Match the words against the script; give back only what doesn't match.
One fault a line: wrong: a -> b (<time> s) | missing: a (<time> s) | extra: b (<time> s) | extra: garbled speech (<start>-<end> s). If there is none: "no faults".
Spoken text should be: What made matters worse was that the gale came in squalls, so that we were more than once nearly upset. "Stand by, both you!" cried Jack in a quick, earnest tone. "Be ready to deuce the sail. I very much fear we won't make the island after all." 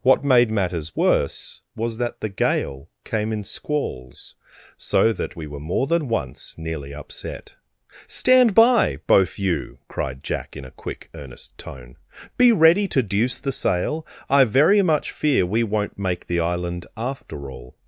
no faults